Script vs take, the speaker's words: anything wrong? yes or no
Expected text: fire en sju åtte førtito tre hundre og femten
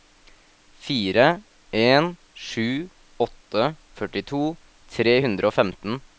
no